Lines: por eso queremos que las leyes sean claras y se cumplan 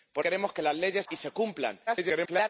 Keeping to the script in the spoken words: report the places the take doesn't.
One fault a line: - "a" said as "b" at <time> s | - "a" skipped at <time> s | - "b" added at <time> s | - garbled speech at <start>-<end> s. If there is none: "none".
- "eso" skipped at 0.2 s
- "sean claras" skipped at 1.1 s
- garbled speech at 1.9-2.5 s